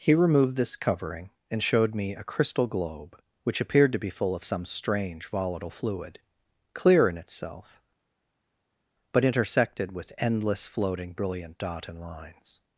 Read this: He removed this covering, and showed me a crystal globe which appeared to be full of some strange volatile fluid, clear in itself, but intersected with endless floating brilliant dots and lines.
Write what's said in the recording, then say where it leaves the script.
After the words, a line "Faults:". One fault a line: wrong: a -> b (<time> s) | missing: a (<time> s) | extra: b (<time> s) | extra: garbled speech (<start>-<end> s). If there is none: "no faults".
He removed this covering, and showed me a crystal globe which appeared to be full of some strange volatile fluid, clear in itself, but intersected with endless floating brilliant dot and lines.
Faults:
wrong: dots -> dot (11.6 s)